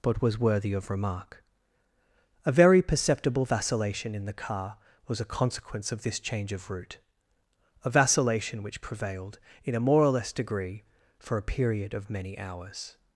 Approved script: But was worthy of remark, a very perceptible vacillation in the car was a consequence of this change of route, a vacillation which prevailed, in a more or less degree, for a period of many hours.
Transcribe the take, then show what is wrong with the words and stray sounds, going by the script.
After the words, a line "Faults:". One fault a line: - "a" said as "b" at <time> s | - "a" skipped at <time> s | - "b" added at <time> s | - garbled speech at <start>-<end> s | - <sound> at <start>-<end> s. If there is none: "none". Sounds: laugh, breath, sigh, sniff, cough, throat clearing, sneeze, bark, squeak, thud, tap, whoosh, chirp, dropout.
But was worthy of remark, a very perceptible vacillation in the car was a consequence of this change of route, a vacillation which prevailed, in a more or less degree, for a period of many hours.
Faults:
none